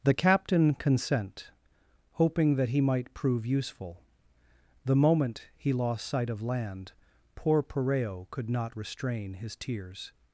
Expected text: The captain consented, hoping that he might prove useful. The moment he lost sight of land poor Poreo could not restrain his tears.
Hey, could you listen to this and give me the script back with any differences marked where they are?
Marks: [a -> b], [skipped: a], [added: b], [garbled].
The captain [consented, -> consent] hoping that he might prove useful. The moment he lost sight of land poor Poreo could not restrain his tears.